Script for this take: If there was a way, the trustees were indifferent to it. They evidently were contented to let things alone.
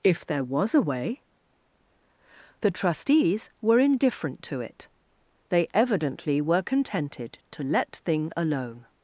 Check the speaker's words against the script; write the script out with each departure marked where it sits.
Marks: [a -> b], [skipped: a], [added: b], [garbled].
If there was a way, the trustees were indifferent to it. They evidently were contented to let [things -> thing] alone.